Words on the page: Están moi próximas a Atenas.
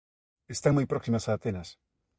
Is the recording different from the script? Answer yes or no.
no